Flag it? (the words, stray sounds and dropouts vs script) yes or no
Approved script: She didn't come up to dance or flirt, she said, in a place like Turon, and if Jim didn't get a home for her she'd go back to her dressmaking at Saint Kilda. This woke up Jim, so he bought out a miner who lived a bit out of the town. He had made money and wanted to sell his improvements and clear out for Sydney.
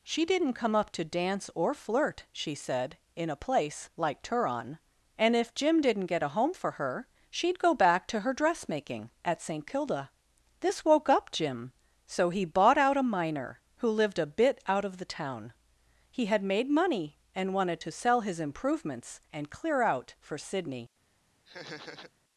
yes